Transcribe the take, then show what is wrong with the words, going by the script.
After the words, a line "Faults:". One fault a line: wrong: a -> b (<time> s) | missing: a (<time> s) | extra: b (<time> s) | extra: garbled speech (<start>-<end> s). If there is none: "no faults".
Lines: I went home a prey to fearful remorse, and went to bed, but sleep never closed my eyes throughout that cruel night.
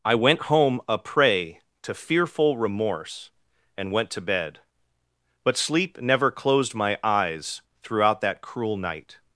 I went home a prey to fearful remorse, and went to bed, but sleep never closed my eyes throughout that cruel night.
Faults:
no faults